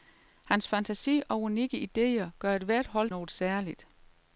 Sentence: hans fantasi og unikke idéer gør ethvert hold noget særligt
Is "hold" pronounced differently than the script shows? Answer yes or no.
no